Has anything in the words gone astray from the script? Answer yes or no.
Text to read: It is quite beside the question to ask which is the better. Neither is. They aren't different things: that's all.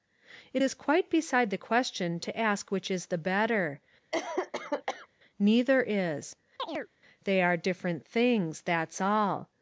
yes